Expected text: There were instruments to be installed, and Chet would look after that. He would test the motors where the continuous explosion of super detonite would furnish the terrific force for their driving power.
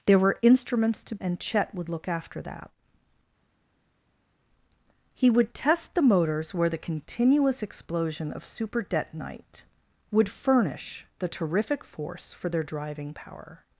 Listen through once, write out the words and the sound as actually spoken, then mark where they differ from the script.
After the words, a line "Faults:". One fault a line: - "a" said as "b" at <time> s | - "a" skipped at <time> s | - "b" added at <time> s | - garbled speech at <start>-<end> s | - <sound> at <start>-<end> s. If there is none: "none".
There were instruments to and Chet would look after that. He would test the motors where the continuous explosion of super detonite would furnish the terrific force for their driving power.
Faults:
- "be installed" skipped at 1.1 s